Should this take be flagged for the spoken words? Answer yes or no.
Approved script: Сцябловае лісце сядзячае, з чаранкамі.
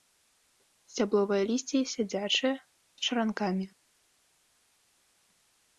no